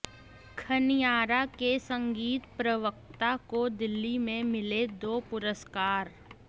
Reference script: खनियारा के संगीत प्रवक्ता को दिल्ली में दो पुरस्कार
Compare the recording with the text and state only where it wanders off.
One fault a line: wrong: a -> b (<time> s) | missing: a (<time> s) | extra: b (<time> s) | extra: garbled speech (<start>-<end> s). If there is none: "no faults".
extra: मिले (4.4 s)